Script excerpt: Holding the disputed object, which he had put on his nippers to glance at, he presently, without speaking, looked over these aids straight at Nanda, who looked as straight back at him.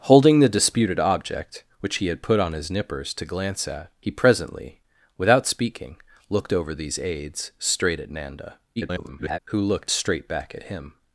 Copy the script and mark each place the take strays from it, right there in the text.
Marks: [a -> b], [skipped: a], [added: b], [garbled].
Holding the disputed object, which he had put on his nippers to glance at, he presently, without speaking, looked over these aids straight at Nanda, [garbled] who looked [skipped: as] straight back at him.